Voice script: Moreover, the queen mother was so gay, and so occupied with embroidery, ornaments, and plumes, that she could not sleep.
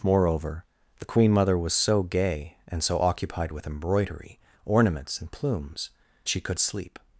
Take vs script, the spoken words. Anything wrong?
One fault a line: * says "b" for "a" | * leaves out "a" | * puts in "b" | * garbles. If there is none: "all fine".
* leaves out "that"
* leaves out "not"